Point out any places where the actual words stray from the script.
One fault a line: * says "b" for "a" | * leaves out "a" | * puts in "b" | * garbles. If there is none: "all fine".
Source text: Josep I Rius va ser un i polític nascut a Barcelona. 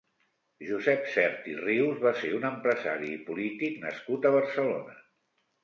* puts in "Sert"
* puts in "empresari"